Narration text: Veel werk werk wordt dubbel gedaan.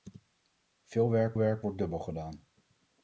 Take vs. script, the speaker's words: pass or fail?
pass